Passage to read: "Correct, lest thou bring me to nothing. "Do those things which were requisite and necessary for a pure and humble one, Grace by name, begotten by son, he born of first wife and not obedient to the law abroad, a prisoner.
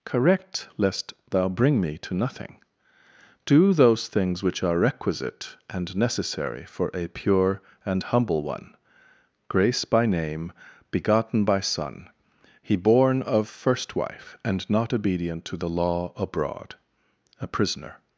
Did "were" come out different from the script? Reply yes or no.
yes